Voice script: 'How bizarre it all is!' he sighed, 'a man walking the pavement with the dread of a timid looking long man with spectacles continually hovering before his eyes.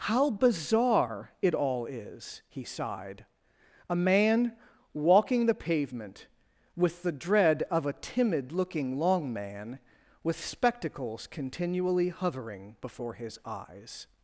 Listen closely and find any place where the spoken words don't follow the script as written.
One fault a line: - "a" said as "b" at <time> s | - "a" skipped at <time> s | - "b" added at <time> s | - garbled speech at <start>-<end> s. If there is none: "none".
none